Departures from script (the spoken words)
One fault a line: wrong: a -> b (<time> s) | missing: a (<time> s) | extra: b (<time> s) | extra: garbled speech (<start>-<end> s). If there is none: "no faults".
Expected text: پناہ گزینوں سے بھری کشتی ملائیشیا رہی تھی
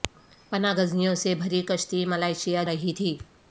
no faults